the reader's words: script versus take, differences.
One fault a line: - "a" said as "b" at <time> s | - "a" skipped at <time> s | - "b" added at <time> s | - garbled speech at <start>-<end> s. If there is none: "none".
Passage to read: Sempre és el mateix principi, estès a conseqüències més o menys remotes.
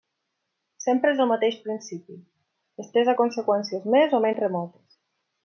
none